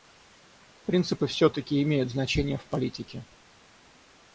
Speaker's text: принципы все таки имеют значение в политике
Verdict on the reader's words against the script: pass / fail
pass